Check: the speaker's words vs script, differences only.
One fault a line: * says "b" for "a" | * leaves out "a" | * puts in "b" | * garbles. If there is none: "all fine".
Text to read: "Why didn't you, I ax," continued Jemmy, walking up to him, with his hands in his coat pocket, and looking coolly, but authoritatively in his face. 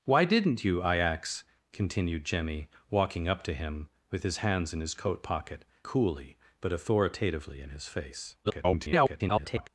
* leaves out "and looking"
* garbles